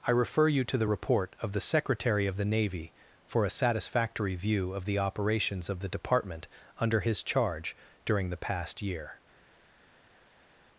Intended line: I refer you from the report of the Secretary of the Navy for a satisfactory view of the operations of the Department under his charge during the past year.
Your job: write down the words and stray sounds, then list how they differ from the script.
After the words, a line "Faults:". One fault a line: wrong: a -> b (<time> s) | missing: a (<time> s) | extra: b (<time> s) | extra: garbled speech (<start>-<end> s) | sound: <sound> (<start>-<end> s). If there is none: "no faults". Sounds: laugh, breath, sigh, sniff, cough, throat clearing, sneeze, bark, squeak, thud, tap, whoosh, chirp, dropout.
I refer you to the report of the Secretary of the Navy for a satisfactory view of the operations of the Department under his charge during the past year.
Faults:
wrong: from -> to (0.6 s)